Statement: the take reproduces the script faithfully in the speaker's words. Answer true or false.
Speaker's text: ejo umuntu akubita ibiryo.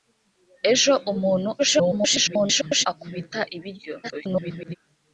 false